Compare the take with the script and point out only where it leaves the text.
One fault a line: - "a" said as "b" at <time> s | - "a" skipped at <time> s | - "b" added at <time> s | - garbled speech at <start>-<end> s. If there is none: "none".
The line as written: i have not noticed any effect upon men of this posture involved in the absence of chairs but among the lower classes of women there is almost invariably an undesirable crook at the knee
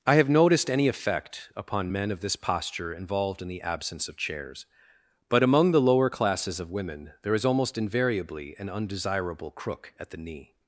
- "not" skipped at 0.3 s